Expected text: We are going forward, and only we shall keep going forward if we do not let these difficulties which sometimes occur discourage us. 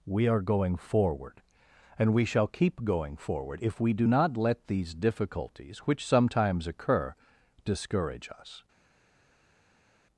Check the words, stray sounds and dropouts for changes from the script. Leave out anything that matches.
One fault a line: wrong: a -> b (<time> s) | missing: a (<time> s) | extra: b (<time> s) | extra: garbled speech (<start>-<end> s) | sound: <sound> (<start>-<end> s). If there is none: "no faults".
missing: only (2.1 s)